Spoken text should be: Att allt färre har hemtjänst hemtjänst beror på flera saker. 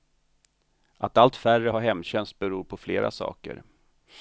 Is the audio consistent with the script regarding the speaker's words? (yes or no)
no